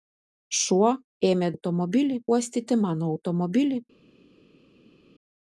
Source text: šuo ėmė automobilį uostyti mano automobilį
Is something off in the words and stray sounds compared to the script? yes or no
no